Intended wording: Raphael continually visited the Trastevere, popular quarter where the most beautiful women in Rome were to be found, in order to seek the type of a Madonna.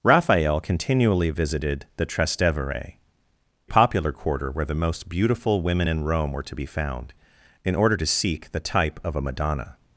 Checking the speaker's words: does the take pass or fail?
pass